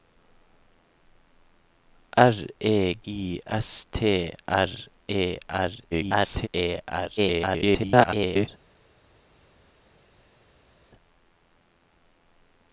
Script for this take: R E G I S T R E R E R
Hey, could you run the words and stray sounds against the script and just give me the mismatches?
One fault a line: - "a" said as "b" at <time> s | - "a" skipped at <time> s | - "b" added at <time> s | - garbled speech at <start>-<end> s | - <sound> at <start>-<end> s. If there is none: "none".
- "G" skipped at 3.0 s
- garbled speech at 5.9-6.5 s
- garbled speech at 7.2-8.5 s